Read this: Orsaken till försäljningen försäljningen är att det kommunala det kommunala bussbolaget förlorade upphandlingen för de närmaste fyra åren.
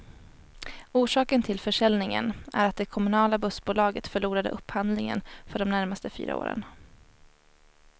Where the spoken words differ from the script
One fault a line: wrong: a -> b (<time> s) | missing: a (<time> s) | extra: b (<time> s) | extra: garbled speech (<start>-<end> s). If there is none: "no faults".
missing: försäljningen (2.3 s)
missing: det kommunala (3.4 s)